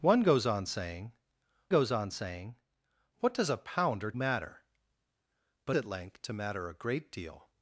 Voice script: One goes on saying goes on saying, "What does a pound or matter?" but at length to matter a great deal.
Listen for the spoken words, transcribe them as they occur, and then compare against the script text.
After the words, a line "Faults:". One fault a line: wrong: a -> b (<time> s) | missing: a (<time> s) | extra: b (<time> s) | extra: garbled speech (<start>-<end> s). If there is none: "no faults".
One goes on saying goes on saying, "What does a pound or matter?" but at length to matter a great deal.
Faults:
no faults